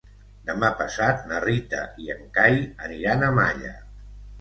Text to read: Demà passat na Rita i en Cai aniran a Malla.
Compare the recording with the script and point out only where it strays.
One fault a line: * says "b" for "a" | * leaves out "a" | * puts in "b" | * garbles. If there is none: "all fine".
all fine